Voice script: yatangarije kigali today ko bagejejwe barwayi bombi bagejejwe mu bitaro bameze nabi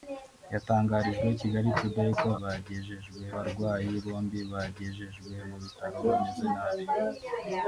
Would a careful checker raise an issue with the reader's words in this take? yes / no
no